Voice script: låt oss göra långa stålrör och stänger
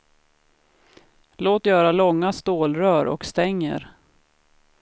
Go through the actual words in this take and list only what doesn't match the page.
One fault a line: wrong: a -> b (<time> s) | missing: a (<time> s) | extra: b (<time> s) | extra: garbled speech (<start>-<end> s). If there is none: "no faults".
missing: oss (1.7 s)